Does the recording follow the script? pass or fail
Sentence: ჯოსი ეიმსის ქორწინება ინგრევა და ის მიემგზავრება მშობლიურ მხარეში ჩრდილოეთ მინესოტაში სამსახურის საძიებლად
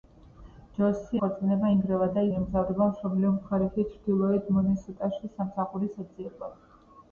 fail